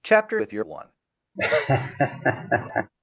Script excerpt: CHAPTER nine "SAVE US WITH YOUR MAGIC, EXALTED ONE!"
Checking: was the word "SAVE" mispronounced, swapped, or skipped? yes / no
yes